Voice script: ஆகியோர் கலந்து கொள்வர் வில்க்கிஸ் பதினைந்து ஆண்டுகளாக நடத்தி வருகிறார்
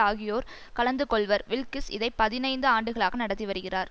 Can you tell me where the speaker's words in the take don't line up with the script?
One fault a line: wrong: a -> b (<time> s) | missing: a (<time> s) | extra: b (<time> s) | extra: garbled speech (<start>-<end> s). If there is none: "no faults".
extra: இதை (1.9 s)